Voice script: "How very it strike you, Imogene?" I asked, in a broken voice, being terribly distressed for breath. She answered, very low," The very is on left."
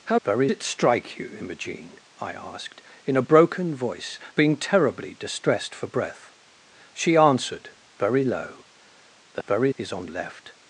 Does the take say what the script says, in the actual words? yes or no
yes